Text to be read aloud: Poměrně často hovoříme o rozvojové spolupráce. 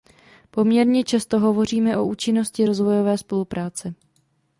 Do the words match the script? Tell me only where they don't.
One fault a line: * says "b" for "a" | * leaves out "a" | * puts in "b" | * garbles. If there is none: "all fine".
* puts in "účinnosti"